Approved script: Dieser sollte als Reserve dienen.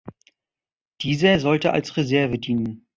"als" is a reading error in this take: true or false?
false